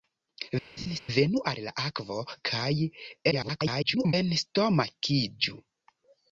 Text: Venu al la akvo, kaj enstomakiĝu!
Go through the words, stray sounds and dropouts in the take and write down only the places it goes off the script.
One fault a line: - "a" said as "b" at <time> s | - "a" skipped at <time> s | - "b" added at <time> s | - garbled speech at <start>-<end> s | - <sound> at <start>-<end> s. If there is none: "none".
- laugh at 0.8-1.0 s
- garbled speech at 3.3-4.1 s